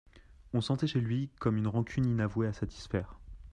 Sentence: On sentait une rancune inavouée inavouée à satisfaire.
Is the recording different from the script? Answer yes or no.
yes